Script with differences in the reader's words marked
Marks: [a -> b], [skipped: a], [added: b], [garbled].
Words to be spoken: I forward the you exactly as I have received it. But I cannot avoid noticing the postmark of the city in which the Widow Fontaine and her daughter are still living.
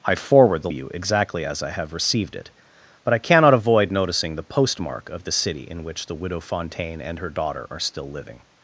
I forward the you exactly as I have received it. But I cannot avoid noticing the postmark of the city in which the Widow Fontaine and her daughter are still living.